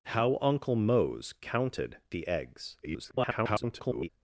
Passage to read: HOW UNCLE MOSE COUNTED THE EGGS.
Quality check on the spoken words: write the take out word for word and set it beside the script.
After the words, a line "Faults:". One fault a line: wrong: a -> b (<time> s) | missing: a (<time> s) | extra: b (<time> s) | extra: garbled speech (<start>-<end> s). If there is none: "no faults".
HOW UNCLE MOSE COUNTED THE EGGS. [garbled]
Faults:
extra: garbled speech (2.8-4.1 s)